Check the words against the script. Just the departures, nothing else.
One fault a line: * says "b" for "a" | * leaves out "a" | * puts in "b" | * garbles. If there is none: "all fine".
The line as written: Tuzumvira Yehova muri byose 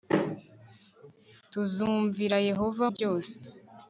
* leaves out "muri"